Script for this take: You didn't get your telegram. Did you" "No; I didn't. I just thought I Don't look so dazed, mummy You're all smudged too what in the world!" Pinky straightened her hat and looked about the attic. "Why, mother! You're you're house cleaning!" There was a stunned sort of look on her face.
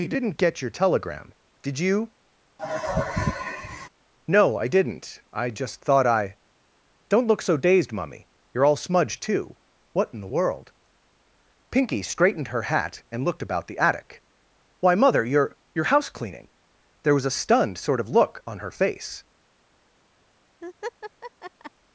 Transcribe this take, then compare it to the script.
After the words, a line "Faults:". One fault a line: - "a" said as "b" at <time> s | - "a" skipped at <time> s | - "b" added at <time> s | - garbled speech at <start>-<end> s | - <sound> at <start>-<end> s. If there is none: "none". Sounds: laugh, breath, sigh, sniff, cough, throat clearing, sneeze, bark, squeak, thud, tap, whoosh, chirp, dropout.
You didn't get your telegram. Did you" "No; I didn't. I just thought I Don't look so dazed, mummy You're all smudged too what in the world!" Pinky straightened her hat and looked about the attic. "Why, mother! You're you're house cleaning!" There was a stunned sort of look on her face.
Faults:
- sigh at 2.6-3.9 s
- laugh at 20.6-21.7 s